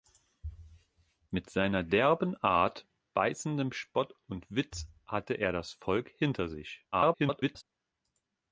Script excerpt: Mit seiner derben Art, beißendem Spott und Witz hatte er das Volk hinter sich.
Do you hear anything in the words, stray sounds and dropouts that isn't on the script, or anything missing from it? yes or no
yes